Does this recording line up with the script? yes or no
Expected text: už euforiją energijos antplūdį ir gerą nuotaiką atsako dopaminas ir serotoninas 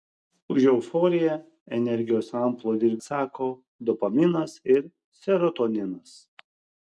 no